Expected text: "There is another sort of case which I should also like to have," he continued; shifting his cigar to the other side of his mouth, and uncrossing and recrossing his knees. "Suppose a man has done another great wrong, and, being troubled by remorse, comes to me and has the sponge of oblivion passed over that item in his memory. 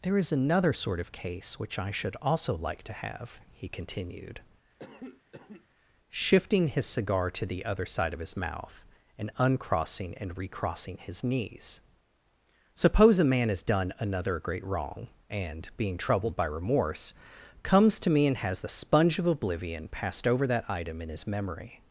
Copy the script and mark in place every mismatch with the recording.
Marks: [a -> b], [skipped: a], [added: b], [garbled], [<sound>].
"There is another sort of case which I should also like to have," he continued; [cough] shifting his cigar to the other side of his mouth, and uncrossing and recrossing his knees. "Suppose a man has done another great wrong, and, being troubled by remorse, comes to me and has the sponge of oblivion passed over that item in his memory.